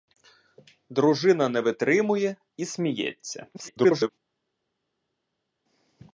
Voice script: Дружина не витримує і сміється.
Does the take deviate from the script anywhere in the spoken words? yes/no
yes